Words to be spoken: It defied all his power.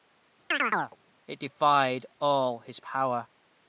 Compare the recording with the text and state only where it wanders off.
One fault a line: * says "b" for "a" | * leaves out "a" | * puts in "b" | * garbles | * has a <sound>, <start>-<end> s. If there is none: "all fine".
* has a chirp, 0.5-1.0 s